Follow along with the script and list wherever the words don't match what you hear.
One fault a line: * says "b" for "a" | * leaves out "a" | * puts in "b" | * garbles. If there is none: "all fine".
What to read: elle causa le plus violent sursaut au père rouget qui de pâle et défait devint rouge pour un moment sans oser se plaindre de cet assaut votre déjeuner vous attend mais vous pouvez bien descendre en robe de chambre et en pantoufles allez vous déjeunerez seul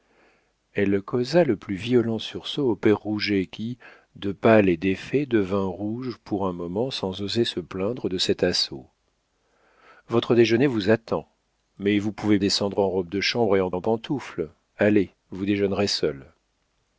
* leaves out "bien"
* puts in "en"